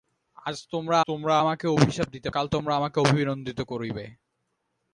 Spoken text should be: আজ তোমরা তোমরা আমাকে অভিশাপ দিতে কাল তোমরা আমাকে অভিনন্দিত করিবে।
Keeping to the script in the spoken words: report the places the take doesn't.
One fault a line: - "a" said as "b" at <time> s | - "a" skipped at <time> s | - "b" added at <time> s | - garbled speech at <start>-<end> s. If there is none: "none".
none